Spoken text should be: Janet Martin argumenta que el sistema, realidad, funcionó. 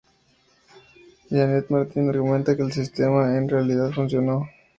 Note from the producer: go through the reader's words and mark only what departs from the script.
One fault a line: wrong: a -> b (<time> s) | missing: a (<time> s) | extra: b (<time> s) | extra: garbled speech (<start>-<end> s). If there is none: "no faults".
extra: en (3.3 s)